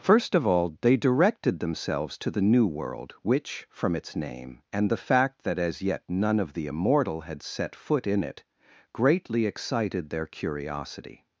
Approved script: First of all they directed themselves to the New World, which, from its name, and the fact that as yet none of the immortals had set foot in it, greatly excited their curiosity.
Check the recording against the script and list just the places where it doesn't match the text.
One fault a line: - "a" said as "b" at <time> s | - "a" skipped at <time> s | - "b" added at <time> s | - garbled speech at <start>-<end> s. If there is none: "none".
- "immortals" said as "immortal" at 6.7 s